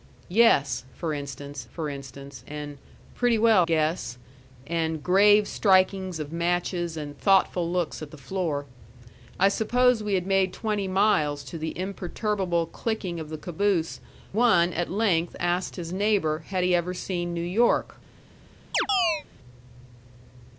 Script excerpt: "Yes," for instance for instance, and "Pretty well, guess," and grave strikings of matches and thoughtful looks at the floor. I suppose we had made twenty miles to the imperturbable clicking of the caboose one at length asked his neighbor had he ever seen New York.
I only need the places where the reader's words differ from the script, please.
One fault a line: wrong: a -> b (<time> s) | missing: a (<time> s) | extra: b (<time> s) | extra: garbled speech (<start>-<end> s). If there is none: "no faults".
no faults